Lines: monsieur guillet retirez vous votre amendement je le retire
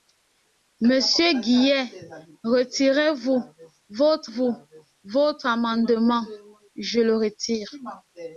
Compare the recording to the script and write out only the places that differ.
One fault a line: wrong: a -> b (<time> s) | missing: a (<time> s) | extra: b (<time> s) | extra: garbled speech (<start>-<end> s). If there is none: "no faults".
extra: vous votre (4.2 s)